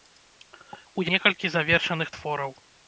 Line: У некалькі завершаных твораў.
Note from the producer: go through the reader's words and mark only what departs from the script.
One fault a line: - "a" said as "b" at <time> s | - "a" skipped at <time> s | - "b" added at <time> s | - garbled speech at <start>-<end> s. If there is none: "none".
none